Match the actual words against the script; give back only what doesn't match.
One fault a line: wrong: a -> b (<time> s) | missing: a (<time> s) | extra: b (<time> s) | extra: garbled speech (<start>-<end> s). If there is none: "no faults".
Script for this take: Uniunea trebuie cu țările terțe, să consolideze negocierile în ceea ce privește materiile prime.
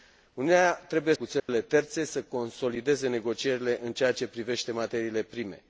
no faults